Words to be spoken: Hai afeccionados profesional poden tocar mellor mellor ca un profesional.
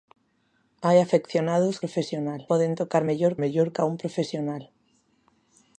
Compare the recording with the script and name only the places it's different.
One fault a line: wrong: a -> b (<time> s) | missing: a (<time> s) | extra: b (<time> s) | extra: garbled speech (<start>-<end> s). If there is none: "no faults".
no faults